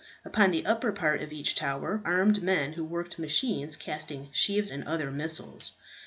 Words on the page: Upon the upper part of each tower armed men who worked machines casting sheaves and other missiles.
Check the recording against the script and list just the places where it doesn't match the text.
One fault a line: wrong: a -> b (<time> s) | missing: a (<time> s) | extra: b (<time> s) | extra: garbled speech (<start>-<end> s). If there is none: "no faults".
no faults